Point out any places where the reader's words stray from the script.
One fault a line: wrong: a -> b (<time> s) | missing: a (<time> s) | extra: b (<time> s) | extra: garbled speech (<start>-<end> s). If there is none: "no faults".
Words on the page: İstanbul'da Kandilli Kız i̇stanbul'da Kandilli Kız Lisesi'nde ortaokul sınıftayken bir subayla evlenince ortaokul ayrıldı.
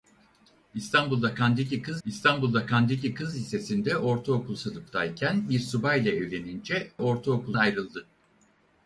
no faults